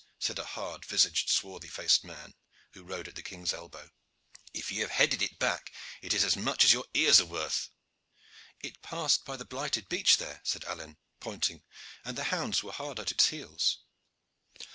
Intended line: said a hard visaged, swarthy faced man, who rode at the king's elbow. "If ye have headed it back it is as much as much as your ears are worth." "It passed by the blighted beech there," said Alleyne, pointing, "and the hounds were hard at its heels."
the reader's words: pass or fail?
fail